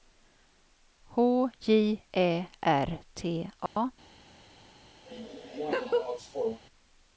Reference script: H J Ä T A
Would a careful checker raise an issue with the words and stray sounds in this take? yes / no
yes